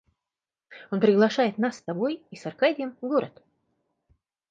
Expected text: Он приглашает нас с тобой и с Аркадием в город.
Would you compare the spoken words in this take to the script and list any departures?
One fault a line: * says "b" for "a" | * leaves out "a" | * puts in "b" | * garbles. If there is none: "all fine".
all fine